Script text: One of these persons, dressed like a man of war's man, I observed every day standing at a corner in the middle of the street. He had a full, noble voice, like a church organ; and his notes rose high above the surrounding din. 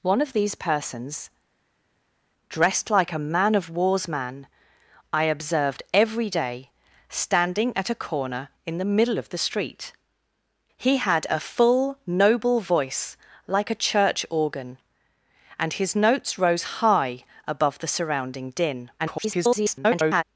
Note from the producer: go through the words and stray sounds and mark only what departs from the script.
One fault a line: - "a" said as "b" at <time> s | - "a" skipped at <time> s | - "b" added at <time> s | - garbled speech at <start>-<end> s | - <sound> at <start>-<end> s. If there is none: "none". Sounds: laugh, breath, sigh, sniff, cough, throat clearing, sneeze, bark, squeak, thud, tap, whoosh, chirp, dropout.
- garbled speech at 19.0-20.2 s